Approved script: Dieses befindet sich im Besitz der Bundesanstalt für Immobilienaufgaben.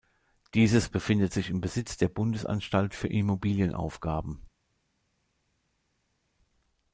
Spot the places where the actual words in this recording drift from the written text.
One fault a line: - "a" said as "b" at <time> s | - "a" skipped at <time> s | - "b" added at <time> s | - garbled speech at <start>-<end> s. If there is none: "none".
none